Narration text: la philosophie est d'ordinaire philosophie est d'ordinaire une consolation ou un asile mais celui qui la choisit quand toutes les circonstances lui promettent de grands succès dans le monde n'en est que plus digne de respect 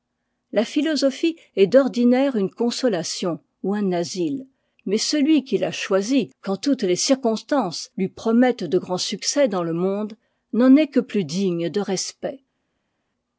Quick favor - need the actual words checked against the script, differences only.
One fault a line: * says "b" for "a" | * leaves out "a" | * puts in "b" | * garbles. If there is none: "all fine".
* leaves out "philosophie est d'ordinaire"